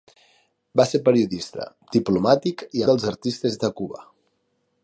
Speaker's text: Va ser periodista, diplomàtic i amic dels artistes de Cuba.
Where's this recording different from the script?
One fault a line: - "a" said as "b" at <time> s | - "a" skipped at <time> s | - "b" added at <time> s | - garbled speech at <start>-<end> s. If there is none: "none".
- "amic" skipped at 2.9 s